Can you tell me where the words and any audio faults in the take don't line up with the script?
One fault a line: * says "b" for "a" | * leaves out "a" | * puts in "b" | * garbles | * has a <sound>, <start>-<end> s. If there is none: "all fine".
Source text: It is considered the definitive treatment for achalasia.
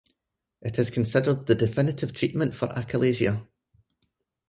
all fine